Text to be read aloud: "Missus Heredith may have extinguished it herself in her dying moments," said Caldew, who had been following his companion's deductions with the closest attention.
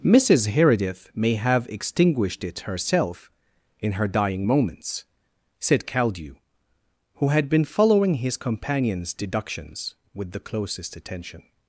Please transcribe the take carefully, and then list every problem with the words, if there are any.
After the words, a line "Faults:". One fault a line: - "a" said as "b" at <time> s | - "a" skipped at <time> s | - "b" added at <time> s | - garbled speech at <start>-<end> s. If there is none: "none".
"Missus Heredith may have extinguished it herself in her dying moments," said Caldew, who had been following his companion's deductions with the closest attention.
Faults:
none